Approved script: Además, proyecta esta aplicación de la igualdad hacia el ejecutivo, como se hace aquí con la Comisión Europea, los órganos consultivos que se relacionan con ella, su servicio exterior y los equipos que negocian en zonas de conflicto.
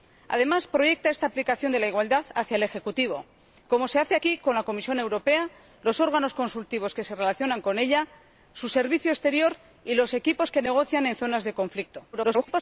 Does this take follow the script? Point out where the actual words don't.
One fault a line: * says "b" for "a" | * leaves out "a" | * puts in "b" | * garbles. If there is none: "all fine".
* garbles